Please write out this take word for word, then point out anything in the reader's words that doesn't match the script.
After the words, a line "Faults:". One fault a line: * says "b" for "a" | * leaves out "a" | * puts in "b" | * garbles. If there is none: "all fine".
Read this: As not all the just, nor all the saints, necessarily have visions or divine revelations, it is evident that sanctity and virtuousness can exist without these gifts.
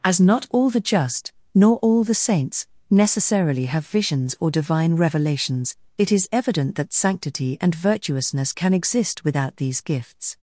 As not all the just, nor all the saints, necessarily have visions or divine revelations, it is evident that sanctity and virtuousness can exist without these gifts.
Faults:
all fine